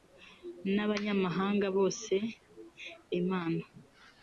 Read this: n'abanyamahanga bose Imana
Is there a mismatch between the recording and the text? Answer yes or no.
no